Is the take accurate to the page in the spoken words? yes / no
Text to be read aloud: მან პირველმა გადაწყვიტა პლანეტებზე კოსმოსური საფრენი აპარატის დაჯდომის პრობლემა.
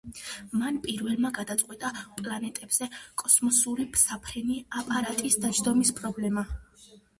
yes